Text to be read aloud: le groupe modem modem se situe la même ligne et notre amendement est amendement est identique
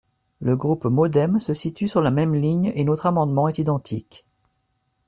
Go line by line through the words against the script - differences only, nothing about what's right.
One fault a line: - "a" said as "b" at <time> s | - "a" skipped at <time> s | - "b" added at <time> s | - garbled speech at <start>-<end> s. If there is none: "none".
- "modem" skipped at 1.4 s
- "sur" added at 1.9 s
- "amendement est" skipped at 3.6 s